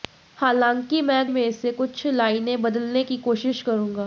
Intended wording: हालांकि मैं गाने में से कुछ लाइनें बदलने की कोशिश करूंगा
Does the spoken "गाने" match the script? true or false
false